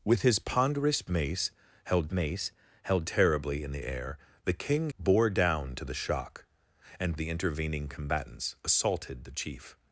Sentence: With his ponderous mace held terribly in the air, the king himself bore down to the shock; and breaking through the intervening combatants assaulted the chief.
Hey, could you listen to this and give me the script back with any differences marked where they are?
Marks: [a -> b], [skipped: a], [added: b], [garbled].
With his ponderous mace held [added: mace held] terribly in the air, the king [skipped: himself] bore down to the shock; and [skipped: breaking through] the intervening combatants assaulted the chief.